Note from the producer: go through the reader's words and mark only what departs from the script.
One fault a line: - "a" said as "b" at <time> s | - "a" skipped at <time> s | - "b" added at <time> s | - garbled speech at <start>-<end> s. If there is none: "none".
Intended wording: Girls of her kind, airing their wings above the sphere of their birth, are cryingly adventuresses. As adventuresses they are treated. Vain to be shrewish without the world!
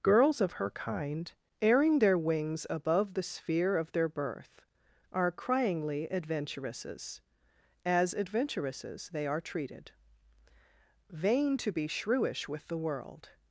- "without" said as "with" at 12.5 s